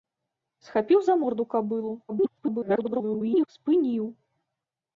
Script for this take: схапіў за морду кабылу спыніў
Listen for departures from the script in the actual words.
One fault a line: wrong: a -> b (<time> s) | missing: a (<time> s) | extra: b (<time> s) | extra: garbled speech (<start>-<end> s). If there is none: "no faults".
extra: garbled speech (2.1-3.5 s)